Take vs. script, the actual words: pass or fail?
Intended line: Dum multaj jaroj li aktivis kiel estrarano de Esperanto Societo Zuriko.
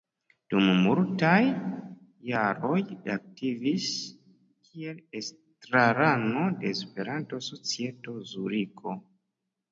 pass